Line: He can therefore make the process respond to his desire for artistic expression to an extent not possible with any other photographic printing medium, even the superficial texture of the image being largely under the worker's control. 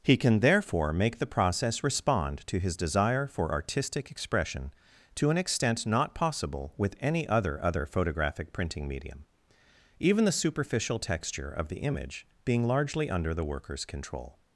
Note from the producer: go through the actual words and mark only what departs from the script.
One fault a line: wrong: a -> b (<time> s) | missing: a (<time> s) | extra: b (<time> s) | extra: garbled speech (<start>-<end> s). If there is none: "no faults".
extra: other (7.6 s)